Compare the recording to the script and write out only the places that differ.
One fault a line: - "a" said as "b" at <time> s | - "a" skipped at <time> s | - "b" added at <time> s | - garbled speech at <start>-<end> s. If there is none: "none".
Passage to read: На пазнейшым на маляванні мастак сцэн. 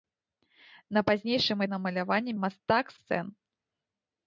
none